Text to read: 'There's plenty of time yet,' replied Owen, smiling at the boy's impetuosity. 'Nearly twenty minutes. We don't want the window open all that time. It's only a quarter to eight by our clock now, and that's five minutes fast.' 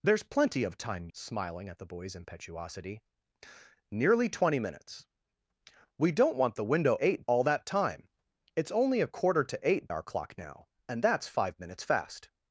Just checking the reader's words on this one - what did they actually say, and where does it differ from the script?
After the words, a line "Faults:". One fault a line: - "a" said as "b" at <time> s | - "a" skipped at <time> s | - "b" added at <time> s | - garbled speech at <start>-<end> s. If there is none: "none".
'There's plenty of time smiling at the boy's impetuosity. 'Nearly twenty minutes. We don't want the window eight all that time. It's only a quarter to eight our clock now, and that's five minutes fast.'
Faults:
- "yet replied Owen" skipped at 1.1 s
- "open" said as "eight" at 7.0 s
- "by" skipped at 9.9 s